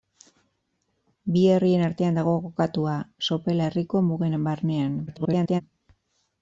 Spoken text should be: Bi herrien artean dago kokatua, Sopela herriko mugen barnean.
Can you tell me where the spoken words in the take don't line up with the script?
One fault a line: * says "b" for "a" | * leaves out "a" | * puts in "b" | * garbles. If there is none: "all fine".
* garbles